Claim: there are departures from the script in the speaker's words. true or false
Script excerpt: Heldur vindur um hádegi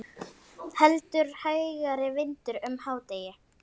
true